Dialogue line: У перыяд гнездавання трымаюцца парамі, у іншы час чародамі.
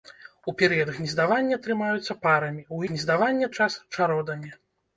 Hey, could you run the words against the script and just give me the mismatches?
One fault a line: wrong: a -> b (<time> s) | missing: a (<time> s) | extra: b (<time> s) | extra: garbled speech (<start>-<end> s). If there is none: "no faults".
wrong: іншы -> гнездавання (2.9 s)